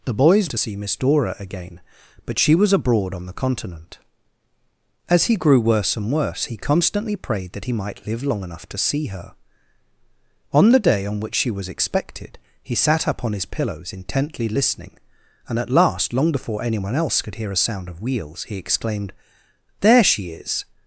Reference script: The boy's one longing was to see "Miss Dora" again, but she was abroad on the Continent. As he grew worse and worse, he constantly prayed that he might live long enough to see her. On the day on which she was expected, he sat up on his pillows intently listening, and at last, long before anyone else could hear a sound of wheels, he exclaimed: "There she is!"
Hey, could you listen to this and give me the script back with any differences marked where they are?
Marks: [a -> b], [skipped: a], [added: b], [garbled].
The boy's [skipped: one longing was] to see "Miss Dora" again, but she was abroad on the Continent. As he grew worse and worse, he constantly prayed that he might live long enough to see her. On the day on which she was expected, he sat up on his pillows intently listening, and at last, long before anyone else could hear a sound of wheels, he exclaimed: "There she is!"